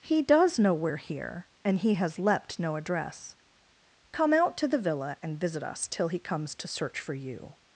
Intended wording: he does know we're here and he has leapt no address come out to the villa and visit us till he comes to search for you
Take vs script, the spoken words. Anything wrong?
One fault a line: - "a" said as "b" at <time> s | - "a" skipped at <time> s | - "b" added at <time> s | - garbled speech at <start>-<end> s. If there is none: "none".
none